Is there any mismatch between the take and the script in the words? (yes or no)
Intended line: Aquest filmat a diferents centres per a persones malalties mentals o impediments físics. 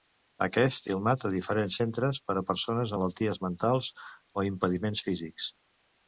no